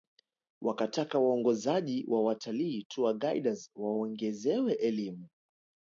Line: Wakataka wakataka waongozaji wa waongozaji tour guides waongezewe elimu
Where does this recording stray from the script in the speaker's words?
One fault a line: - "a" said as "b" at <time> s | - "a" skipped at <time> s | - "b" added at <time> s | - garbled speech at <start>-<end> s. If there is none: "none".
- "wakataka" skipped at 1.2 s
- "waongozaji" said as "watalii" at 2.2 s